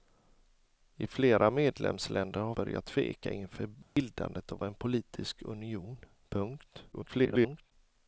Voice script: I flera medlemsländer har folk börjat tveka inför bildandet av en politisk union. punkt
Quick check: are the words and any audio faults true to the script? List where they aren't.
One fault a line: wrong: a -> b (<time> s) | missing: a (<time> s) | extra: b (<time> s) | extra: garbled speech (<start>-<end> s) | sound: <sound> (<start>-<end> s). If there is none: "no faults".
missing: folk (2.5 s)
sound: dropout (3.8-4.0 s)
extra: garbled speech (6.9-7.7 s)